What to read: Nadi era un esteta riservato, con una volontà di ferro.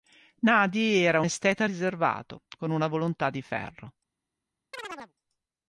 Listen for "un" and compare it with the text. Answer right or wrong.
wrong